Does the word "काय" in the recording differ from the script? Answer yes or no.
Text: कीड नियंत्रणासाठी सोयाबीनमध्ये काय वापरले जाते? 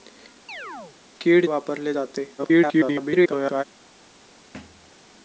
yes